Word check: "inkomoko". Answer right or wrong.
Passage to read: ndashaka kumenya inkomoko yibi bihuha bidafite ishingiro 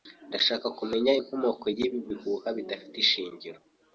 right